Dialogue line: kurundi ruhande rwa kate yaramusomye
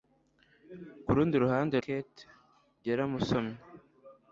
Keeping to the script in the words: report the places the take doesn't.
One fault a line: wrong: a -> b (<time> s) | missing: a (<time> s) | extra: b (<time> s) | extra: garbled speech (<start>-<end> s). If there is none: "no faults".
missing: rwa (1.8 s)